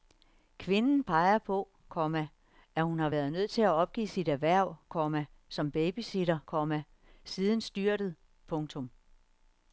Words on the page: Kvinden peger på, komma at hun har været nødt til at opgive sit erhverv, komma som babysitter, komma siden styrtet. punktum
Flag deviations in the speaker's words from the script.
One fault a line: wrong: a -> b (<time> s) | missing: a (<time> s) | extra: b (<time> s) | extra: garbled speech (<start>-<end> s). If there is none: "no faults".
no faults